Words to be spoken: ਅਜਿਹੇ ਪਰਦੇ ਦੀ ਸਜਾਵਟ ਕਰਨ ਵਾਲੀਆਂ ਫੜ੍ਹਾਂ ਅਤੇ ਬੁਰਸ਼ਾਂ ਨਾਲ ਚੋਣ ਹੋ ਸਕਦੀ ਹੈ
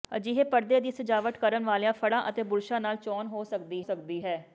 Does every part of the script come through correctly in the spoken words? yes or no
no